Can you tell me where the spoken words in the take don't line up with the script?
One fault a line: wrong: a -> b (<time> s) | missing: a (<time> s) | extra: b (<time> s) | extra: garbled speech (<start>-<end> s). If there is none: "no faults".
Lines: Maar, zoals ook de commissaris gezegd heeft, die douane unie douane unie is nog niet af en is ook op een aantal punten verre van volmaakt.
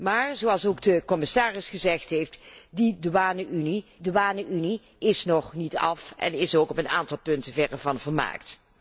no faults